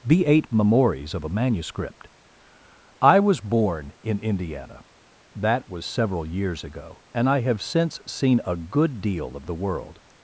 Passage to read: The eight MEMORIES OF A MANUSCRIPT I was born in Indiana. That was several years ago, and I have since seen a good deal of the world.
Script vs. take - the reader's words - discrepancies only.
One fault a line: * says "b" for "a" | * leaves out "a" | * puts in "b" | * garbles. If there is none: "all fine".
all fine